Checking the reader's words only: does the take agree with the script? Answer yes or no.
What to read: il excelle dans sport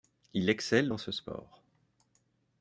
no